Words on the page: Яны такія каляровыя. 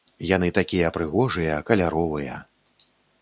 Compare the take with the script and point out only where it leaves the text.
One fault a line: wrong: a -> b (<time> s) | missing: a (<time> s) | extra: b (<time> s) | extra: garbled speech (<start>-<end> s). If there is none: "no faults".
extra: прыгожыя (1.0 s)